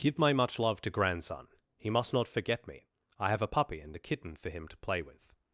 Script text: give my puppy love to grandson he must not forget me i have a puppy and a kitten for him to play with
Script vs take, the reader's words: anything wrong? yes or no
yes